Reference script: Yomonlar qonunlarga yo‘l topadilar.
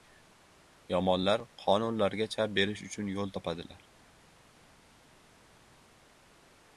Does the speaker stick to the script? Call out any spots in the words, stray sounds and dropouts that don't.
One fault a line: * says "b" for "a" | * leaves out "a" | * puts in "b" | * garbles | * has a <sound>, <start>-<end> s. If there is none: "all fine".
* puts in "chap berish uchun"